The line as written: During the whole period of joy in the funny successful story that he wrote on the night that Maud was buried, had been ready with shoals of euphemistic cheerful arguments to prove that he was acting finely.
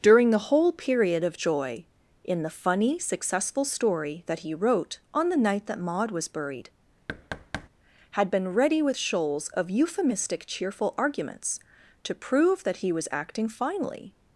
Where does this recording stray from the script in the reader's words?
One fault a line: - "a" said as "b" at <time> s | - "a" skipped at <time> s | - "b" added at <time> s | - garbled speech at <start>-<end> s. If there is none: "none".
none